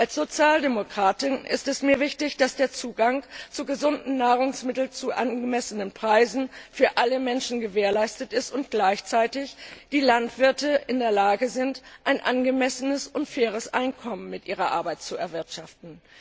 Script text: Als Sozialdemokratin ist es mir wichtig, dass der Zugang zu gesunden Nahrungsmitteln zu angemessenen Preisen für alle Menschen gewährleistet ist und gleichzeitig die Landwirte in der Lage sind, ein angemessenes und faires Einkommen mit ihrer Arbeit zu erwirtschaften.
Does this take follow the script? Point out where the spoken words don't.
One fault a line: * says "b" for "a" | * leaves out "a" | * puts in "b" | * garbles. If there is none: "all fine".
all fine